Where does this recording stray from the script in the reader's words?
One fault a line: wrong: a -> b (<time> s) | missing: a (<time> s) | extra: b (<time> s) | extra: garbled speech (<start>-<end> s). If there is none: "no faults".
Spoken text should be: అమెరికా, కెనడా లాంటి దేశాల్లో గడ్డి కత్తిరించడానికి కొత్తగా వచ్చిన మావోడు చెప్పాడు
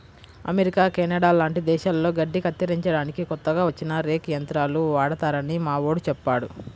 extra: రేక్ యంత్రాలు వాడతారని (4.0 s)